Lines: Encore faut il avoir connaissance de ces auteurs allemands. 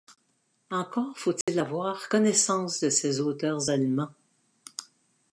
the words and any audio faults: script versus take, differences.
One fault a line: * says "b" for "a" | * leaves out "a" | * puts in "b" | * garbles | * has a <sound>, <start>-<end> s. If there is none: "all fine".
* has a dropout, 1.4-1.5 s